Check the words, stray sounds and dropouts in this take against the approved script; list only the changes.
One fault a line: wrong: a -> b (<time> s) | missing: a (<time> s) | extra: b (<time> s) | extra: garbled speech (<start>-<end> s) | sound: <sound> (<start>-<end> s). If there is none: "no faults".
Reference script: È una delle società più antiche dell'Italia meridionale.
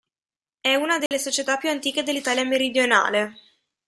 sound: dropout (1.1-1.1 s)